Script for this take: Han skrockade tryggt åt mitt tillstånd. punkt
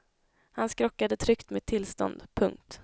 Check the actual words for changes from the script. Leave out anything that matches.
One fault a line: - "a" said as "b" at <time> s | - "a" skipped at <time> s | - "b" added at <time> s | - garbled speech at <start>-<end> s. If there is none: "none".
- "åt" skipped at 1.5 s